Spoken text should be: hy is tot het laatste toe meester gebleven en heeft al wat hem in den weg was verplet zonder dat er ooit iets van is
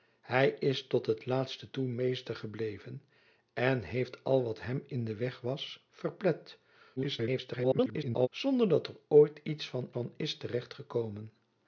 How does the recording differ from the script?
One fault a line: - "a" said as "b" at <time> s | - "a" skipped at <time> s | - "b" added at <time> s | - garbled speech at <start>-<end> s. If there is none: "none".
- garbled speech at 7.0-8.3 s
- "van" added at 9.9 s